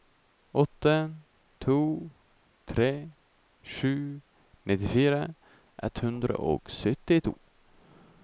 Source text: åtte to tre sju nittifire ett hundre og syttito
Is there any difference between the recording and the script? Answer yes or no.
no